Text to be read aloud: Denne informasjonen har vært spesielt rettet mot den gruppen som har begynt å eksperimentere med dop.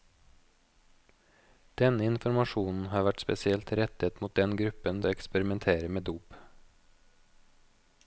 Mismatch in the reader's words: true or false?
true